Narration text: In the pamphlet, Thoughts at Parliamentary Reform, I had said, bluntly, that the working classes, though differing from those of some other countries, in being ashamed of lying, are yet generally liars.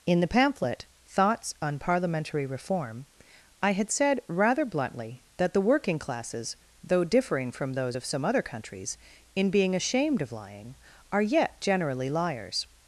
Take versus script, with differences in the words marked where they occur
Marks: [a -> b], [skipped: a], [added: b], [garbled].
In the pamphlet, Thoughts [at -> on] Parliamentary Reform, I had said, [added: rather] bluntly, that the working classes, though differing from those of some other countries, in being ashamed of lying, are yet generally liars.